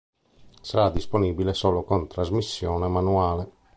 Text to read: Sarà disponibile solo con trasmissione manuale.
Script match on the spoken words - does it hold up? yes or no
yes